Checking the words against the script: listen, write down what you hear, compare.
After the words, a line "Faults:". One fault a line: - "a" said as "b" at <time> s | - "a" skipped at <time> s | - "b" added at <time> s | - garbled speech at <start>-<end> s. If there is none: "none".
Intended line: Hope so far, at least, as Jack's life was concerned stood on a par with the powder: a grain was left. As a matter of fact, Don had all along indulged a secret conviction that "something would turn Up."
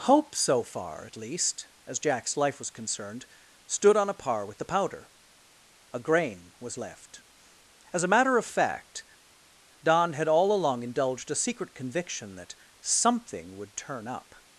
Hope so far, at least, as Jack's life was concerned stood on a par with the powder: a grain was left. As a matter of fact, Don had all along indulged a secret conviction that "something would turn Up."
Faults:
none